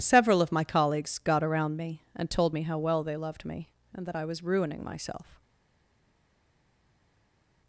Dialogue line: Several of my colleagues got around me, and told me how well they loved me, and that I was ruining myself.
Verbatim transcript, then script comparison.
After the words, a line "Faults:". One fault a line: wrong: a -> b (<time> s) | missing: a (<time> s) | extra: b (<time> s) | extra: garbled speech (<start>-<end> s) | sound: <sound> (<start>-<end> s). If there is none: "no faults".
Several of my colleagues got around me, and told me how well they loved me, and that I was ruining myself.
Faults:
no faults